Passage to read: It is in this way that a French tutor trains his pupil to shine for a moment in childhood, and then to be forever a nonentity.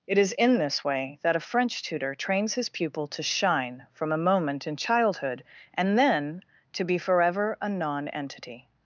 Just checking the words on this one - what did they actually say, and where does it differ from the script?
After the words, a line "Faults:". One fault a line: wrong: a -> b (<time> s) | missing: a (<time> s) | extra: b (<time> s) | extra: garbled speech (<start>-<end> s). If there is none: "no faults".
It is in this way that a French tutor trains his pupil to shine from a moment in childhood, and then to be forever a nonentity.
Faults:
wrong: for -> from (3.9 s)